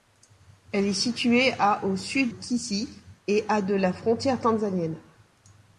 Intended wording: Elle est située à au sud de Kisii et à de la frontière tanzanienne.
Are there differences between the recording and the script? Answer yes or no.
yes